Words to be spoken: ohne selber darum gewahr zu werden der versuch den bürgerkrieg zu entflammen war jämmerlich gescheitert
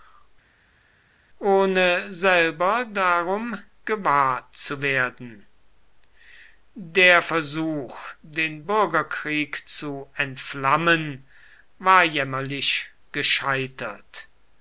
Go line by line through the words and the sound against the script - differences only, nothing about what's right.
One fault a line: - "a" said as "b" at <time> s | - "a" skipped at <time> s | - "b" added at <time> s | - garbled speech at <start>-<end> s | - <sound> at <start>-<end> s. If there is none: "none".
none